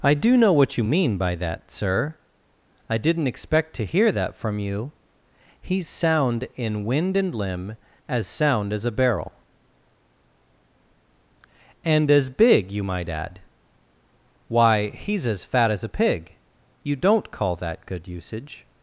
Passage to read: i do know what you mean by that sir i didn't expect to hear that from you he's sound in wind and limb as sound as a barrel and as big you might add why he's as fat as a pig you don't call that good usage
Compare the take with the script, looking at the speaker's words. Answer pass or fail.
pass